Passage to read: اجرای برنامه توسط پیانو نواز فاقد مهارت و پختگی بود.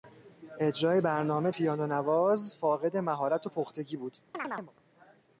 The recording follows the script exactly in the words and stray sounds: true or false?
false